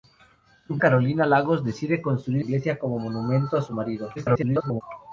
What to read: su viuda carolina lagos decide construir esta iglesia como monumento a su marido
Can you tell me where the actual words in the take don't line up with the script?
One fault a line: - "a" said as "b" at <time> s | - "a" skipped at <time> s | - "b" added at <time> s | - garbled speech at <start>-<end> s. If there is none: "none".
- "viuda" skipped at 0.8 s
- "esta" skipped at 2.4 s
- garbled speech at 4.2-4.8 s